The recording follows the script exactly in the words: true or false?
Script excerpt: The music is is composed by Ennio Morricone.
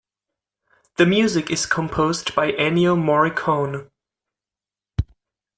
false